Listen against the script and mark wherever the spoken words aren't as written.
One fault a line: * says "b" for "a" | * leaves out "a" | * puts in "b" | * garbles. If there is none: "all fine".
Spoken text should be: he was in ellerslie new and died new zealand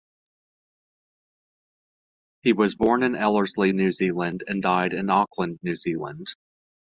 * puts in "born"
* puts in "zealand"
* puts in "in auckland"